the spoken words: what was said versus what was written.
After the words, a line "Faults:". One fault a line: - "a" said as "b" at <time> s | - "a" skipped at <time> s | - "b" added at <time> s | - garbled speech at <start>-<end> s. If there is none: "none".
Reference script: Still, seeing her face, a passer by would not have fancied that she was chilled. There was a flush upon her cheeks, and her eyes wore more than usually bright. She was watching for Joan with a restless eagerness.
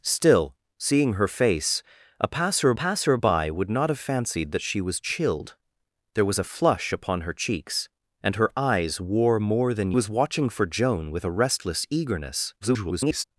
Still, seeing her face, a passer passer by would not have fancied that she was chilled. There was a flush upon her cheeks, and her eyes wore more than was watching for Joan with a restless eagerness. [garbled]
Faults:
- "passer" added at 2.7 s
- "usually bright She" skipped at 9.9 s
- garbled speech at 12.6-13.2 s